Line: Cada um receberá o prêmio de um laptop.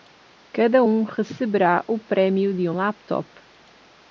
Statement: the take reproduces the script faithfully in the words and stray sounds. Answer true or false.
true